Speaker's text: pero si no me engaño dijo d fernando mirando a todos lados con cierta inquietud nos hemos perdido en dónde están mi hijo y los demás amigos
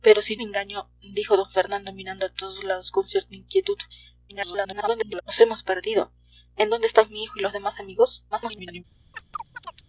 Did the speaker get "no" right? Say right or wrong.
wrong